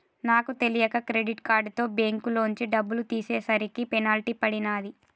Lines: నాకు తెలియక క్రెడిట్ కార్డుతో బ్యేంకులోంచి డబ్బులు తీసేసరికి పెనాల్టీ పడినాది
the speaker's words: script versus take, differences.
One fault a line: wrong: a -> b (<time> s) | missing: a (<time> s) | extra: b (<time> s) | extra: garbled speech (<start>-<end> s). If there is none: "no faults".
no faults